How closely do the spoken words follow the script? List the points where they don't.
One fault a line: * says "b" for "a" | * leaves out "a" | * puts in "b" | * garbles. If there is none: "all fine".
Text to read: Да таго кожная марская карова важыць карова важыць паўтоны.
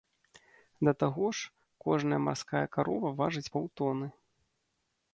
* puts in "ж"
* leaves out "карова важыць"